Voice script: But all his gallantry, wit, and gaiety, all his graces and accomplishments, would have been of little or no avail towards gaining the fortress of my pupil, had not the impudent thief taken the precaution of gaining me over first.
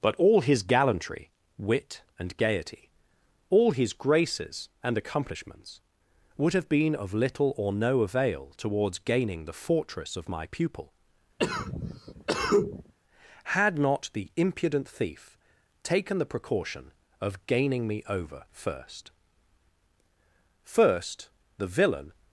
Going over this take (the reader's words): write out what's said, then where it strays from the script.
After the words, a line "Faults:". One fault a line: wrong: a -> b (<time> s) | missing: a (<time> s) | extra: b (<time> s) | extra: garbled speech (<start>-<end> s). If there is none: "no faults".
But all his gallantry, wit, and gaiety, all his graces and accomplishments, would have been of little or no avail towards gaining the fortress of my pupil, had not the impudent thief taken the precaution of gaining me over first. First, the villain
Faults:
extra: First the villain (20.6 s)